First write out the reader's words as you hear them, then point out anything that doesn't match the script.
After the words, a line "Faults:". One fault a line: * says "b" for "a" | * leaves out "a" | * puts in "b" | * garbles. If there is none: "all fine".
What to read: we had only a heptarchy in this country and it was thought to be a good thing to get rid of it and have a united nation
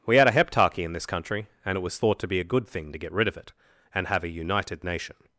we had a heptarchy in this country and it was thought to be a good thing to get rid of it and have a united nation
Faults:
* leaves out "only"